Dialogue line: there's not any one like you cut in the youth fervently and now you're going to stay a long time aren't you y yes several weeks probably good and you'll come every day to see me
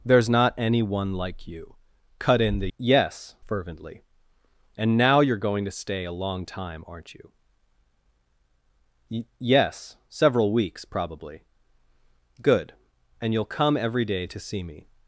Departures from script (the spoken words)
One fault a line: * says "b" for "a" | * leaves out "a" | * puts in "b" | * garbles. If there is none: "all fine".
* says "yes" for "youth"